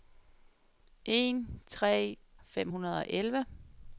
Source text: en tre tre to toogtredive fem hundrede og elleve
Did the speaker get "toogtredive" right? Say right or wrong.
wrong